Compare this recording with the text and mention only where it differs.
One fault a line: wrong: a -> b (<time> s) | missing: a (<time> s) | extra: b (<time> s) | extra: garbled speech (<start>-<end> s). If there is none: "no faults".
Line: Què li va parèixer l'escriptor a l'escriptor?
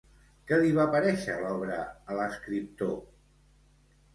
wrong: l'escriptor -> l'obra (1.4 s)